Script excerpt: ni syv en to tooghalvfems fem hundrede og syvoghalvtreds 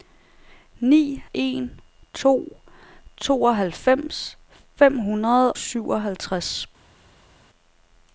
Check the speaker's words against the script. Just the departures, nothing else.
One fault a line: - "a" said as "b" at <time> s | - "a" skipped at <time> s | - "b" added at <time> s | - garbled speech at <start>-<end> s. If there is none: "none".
- "syv" skipped at 1.2 s
- "og" skipped at 5.5 s